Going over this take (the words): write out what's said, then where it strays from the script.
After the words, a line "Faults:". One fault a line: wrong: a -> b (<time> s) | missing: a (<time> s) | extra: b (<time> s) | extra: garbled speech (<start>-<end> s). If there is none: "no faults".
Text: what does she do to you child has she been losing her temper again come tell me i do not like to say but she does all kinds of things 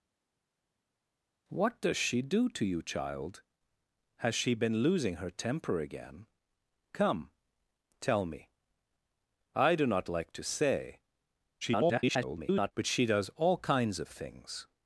what does she do to you child has she been losing her temper again come tell me i do not like to say [garbled] but she does all kinds of things
Faults:
extra: garbled speech (11.6-12.7 s)